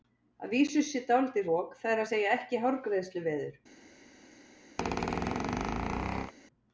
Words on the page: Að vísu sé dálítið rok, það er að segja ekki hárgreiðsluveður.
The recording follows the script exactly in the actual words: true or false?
true